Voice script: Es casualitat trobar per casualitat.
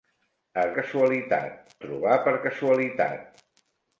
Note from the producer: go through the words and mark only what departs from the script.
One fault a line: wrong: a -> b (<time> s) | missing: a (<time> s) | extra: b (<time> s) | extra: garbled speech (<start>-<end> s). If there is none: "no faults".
no faults